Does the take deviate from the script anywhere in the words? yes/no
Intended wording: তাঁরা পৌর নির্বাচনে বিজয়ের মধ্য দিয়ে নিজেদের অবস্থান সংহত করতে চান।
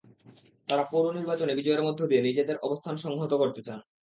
no